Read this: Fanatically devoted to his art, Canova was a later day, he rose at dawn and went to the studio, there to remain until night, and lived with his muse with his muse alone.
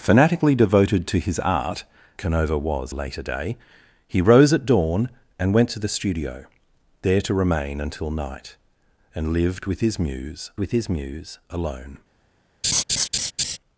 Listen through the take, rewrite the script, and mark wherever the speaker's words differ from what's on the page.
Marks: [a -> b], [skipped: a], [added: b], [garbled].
Fanatically devoted to his art, Canova was a later day, he rose at dawn and went to the studio, there to remain until night, and lived with his muse with his muse alone.